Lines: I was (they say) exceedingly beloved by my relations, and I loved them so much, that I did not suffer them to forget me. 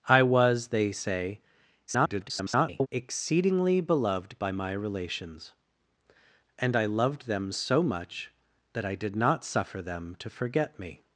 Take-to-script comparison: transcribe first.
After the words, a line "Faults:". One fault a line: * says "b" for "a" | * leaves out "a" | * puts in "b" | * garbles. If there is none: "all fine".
I was (they say) [garbled] exceedingly beloved by my relations, and I loved them so much, that I did not suffer them to forget me.
Faults:
* garbles